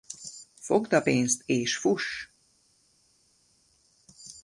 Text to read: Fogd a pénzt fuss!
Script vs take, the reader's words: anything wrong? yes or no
yes